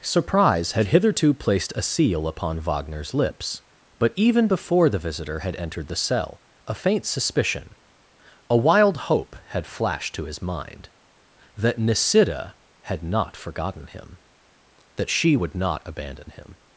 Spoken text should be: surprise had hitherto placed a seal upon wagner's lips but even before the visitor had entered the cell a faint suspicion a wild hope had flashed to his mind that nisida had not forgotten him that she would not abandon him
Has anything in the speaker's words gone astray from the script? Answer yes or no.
no